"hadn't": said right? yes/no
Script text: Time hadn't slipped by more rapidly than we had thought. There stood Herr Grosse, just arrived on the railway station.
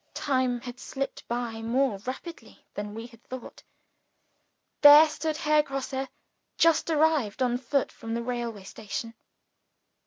no